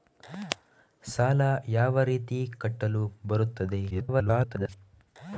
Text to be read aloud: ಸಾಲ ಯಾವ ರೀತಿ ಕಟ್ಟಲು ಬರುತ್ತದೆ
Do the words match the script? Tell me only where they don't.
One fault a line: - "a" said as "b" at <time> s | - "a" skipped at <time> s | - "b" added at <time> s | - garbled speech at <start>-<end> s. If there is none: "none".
- garbled speech at 3.9-4.7 s